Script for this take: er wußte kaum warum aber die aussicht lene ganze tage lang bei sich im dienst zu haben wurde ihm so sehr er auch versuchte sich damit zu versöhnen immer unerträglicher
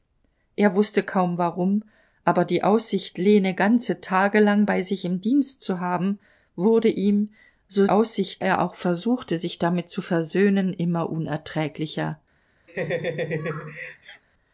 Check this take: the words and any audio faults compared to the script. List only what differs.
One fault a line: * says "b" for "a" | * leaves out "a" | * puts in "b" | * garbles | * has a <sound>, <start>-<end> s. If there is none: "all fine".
* says "aussicht" for "sehr"
* has a laugh, 12.7-14.2 s